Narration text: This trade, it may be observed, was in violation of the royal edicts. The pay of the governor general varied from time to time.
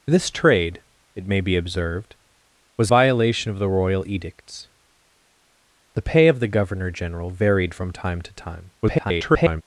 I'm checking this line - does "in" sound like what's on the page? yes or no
no